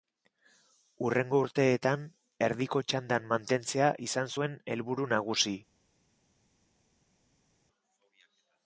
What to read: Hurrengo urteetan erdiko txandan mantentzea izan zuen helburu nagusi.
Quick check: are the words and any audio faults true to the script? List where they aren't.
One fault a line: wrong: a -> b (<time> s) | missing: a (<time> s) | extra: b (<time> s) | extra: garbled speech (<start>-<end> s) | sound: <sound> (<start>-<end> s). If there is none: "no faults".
no faults